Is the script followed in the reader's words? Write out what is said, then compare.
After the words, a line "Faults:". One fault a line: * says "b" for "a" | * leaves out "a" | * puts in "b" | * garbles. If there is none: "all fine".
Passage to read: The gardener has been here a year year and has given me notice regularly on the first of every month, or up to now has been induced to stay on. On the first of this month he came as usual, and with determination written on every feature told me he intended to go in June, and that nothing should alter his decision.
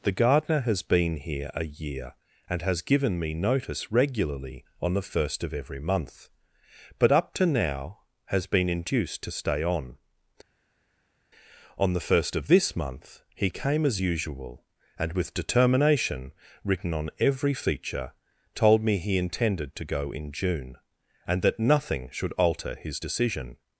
The gardener has been here a year and has given me notice regularly on the first of every month, but up to now has been induced to stay on. On the first of this month he came as usual, and with determination written on every feature told me he intended to go in June, and that nothing should alter his decision.
Faults:
* leaves out "year"
* says "but" for "or"